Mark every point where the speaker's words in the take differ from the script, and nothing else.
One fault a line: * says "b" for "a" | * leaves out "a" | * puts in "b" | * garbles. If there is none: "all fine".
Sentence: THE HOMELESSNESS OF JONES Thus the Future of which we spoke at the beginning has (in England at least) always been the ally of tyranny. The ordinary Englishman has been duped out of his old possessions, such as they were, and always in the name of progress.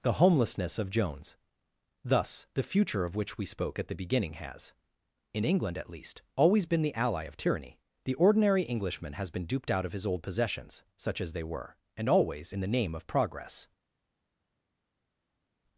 all fine